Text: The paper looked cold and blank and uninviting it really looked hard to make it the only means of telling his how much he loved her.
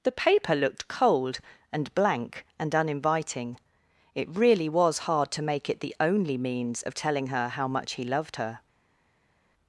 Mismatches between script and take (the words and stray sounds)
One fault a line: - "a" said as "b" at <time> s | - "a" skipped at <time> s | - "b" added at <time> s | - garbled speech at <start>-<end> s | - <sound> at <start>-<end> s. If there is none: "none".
- "looked" said as "was" at 4.7 s
- "his" said as "her" at 7.3 s